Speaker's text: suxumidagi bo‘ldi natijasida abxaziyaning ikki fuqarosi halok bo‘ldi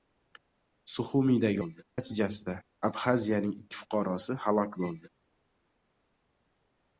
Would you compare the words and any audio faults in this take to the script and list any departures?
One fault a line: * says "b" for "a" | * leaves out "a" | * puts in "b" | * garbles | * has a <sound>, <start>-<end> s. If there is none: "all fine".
all fine